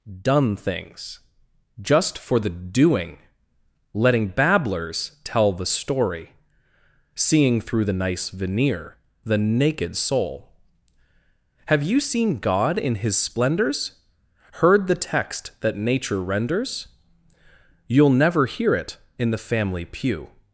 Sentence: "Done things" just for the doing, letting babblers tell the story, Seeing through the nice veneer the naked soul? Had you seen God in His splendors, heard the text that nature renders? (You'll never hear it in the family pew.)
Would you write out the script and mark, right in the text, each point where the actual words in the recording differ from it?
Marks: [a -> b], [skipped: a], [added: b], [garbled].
"Done things" just for the doing, letting babblers tell the story, Seeing through the nice veneer the naked soul? [Had -> Have] you seen God in His splendors, heard the text that nature renders? (You'll never hear it in the family pew.)